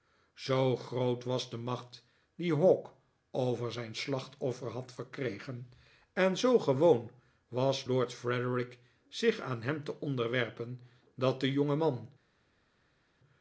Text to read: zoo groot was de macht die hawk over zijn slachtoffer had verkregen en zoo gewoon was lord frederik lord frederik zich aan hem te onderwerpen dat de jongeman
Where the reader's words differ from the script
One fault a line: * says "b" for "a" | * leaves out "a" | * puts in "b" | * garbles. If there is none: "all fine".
* leaves out "lord frederik"